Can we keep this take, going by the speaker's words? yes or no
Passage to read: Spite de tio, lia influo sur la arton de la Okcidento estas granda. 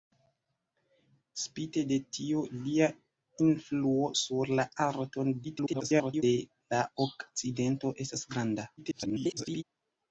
no